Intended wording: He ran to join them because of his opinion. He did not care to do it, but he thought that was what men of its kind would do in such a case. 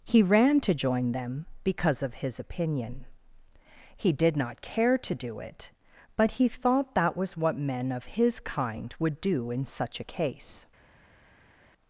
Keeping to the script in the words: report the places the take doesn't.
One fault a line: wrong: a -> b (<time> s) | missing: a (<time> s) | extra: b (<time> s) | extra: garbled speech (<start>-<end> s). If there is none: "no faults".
wrong: its -> his (8.1 s)